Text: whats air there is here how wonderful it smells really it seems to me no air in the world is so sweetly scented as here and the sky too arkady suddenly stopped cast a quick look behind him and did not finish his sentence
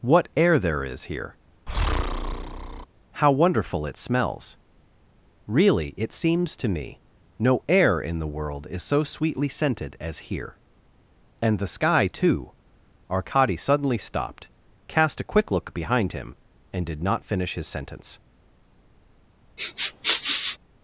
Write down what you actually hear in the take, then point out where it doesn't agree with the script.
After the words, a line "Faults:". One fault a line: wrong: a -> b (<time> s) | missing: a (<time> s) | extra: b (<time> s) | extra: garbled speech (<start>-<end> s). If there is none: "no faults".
what air there is here how wonderful it smells really it seems to me no air in the world is so sweetly scented as here and the sky too arkady suddenly stopped cast a quick look behind him and did not finish his sentence
Faults:
wrong: whats -> what (0.0 s)